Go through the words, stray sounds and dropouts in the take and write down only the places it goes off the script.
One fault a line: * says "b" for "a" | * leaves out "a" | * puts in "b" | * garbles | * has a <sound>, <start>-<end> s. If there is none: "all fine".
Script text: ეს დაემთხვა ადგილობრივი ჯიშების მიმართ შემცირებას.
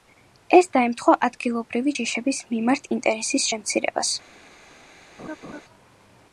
* puts in "ინტერესის"
* has a laugh, 5.2-5.6 s